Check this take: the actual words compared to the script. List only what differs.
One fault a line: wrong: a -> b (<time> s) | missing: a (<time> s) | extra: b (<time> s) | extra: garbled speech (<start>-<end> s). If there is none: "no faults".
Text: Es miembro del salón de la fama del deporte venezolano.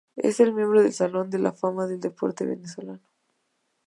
no faults